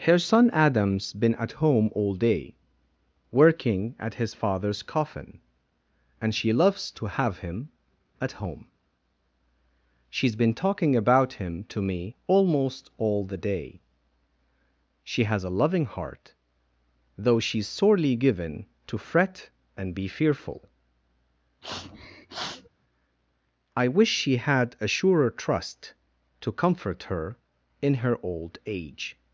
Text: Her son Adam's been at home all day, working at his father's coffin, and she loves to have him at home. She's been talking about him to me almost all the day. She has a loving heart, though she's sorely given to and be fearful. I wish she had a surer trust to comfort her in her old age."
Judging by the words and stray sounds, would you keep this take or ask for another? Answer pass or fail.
fail